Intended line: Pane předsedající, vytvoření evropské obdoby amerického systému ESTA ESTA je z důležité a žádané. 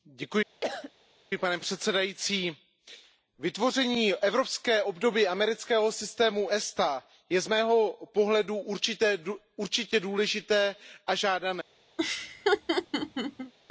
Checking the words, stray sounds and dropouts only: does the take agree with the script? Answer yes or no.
no